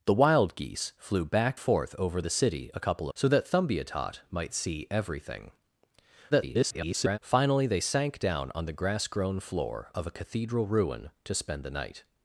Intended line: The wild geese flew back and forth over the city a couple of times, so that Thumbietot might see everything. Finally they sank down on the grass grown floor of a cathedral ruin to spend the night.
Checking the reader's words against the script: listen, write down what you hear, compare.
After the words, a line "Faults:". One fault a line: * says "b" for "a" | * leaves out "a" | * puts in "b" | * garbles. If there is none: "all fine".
The wild geese flew back forth over the city a couple so that Thumbietot might see everything. [garbled] Finally they sank down on the grass grown floor of a cathedral ruin to spend the night.
Faults:
* leaves out "and"
* leaves out "of times"
* garbles